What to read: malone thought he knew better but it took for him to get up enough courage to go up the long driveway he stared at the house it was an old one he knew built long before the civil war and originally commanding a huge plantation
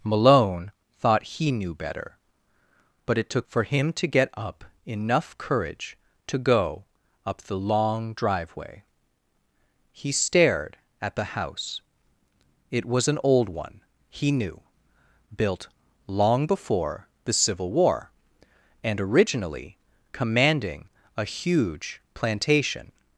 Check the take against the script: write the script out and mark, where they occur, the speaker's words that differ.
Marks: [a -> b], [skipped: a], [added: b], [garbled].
malone thought he knew better but it took for him to get up enough courage to go up the long driveway he stared at the house it was an old one he knew built long before the civil war and originally commanding a huge plantation